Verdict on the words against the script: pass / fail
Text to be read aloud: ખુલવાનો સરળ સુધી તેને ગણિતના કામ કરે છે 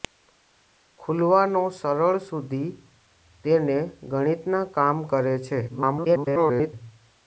fail